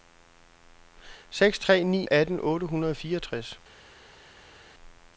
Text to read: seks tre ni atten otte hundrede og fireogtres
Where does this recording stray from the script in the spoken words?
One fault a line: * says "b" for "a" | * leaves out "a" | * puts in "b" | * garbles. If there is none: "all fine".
all fine